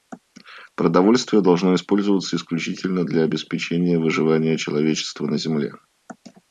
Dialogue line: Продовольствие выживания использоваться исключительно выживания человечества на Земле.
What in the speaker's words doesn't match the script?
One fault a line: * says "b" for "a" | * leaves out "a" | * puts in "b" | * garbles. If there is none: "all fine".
* says "должно" for "выживания"
* puts in "для обеспечения"